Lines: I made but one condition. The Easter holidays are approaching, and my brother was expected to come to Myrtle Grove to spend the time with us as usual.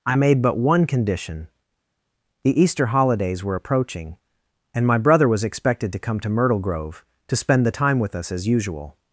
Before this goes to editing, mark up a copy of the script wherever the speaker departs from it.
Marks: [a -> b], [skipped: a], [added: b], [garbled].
I made but one condition. The Easter holidays [are -> were] approaching, and my brother was expected to come to Myrtle Grove to spend the time with us as usual.